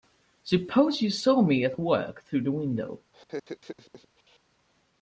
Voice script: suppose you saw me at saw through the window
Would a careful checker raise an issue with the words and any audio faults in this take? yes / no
yes